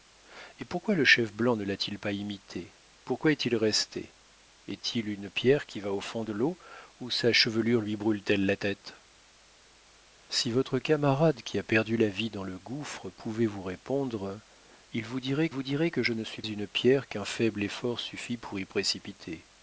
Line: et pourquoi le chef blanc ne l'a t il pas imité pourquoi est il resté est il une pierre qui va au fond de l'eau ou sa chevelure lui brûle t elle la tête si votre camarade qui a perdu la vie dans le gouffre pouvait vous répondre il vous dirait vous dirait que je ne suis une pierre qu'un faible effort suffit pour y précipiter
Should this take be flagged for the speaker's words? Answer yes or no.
no